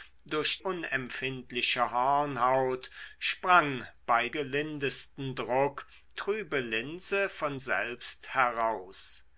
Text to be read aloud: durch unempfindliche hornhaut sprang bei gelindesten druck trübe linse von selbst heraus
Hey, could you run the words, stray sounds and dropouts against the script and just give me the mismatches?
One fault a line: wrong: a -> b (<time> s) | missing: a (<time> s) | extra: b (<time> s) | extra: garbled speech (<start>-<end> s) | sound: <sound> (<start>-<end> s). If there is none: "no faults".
no faults